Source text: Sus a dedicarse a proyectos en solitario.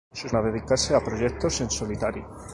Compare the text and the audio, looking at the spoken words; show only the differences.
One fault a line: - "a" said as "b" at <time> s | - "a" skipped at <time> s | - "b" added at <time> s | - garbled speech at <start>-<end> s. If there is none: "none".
none